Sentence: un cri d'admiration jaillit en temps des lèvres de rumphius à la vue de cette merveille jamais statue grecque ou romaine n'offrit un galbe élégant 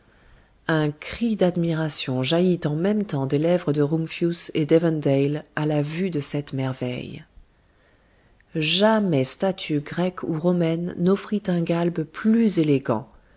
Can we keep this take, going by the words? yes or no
no